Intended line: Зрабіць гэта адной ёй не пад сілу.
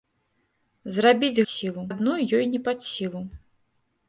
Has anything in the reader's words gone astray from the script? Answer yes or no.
yes